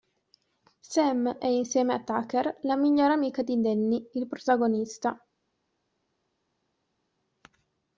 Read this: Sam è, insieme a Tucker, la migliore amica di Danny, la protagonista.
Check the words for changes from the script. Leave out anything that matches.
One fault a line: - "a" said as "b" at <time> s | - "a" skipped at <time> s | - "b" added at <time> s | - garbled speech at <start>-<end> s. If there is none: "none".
- "la" said as "il" at 4.1 s